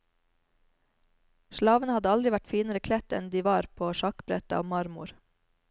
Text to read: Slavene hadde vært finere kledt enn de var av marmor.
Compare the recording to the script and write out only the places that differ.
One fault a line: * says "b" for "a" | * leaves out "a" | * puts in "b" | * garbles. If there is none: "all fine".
* puts in "aldri"
* puts in "på sjakkbrettet"